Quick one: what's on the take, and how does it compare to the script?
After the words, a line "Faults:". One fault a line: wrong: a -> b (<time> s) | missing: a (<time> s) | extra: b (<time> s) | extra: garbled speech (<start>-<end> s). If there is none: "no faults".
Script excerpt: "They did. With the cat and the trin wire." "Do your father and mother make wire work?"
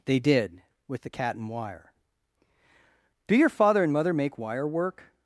"They did. With the cat and wire." "Do your father and mother make wire work?"
Faults:
missing: the trin (1.5 s)